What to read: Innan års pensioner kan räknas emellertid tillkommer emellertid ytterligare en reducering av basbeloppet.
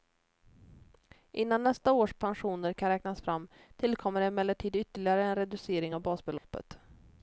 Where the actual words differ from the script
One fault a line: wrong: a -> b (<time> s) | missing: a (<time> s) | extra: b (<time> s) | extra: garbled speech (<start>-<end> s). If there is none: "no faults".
extra: nästa (1.6 s)
wrong: emellertid -> fram (3.2 s)